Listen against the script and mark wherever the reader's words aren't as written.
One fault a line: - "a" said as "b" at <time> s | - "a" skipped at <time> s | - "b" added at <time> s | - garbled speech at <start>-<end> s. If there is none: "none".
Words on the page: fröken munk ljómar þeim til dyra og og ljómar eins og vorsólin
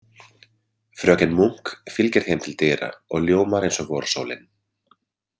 - "ljómar" said as "fylgir" at 2.0 s
- "og" skipped at 3.3 s